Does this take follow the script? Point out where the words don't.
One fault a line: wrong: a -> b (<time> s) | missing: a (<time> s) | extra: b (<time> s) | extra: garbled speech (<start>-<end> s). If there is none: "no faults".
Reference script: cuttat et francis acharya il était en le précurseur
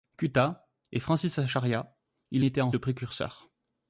no faults